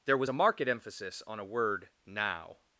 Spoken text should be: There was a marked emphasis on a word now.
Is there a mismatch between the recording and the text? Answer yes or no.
no